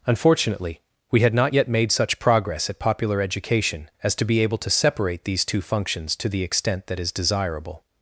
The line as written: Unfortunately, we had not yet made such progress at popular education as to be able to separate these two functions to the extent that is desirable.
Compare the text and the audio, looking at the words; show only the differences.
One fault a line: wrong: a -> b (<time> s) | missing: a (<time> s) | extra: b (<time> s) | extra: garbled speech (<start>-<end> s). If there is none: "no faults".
no faults